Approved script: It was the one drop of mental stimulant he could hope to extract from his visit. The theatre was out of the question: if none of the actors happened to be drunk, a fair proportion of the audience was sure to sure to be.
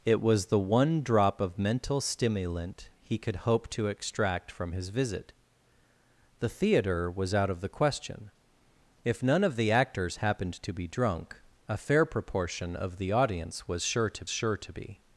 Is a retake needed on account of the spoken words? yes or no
no